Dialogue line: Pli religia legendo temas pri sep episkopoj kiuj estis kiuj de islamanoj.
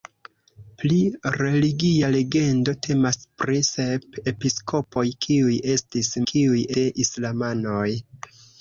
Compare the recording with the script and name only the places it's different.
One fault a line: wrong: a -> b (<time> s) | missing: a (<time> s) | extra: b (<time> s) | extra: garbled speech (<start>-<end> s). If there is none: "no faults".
no faults